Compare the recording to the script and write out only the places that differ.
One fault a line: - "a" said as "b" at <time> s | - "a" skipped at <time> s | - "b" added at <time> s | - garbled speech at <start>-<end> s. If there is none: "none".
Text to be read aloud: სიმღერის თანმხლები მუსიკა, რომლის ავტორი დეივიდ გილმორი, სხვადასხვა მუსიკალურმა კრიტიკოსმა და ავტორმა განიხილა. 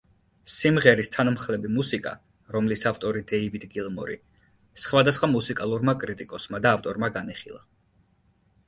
none